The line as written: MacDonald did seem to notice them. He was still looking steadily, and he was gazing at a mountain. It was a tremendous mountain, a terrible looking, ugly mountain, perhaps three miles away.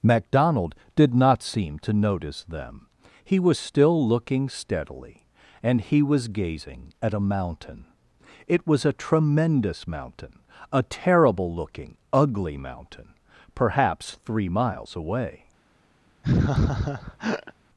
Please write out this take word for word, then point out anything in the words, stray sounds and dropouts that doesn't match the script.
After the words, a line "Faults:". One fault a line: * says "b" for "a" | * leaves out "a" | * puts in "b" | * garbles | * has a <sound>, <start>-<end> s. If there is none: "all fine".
MacDonald did not seem to notice them. He was still looking steadily, and he was gazing at a mountain. It was a tremendous mountain, a terrible looking, ugly mountain, perhaps three miles away.
Faults:
* puts in "not"
* has a laugh, 16.2-17.5 s